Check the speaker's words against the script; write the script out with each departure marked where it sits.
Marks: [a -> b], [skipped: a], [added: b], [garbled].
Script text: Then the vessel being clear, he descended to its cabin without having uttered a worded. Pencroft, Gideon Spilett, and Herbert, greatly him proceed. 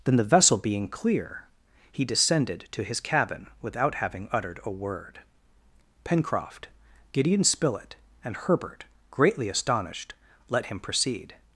Then the vessel being clear, he descended to [its -> his] cabin without having uttered a [worded. -> word] Pencroft, Gideon Spilett, and Herbert, greatly [added: astonished let] him proceed.